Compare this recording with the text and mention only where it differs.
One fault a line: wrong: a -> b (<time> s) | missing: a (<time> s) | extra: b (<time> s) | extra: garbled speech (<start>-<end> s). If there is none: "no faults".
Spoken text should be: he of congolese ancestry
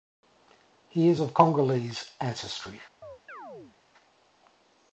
extra: is (1.1 s)